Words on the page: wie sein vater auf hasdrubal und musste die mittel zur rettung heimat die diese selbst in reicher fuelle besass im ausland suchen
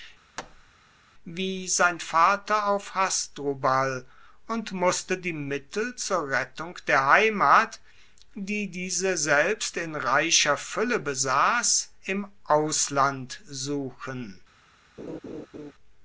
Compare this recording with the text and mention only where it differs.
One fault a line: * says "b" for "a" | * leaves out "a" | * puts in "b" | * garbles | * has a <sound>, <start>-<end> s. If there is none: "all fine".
* has a thud, 0.4-0.7 s
* puts in "der"
* has a laugh, 15.0-15.7 s